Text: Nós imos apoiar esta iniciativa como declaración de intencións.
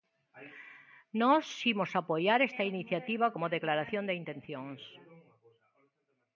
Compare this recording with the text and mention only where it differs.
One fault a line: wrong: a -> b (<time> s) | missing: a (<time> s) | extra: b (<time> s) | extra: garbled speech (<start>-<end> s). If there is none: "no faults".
no faults